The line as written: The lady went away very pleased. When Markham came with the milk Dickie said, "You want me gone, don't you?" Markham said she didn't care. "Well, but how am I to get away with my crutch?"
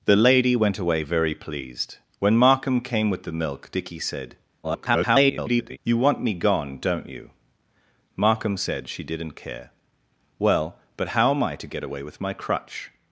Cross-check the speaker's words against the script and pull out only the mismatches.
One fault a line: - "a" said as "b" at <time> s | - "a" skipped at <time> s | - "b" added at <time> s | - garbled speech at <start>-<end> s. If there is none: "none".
- garbled speech at 4.6-5.8 s